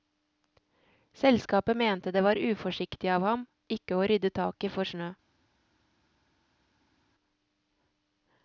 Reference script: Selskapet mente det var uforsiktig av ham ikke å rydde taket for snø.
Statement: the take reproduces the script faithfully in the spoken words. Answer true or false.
true